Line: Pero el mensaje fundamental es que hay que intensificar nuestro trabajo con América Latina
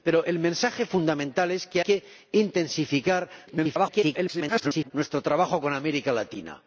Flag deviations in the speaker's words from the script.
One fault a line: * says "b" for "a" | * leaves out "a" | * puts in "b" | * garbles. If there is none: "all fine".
* leaves out "hay"
* garbles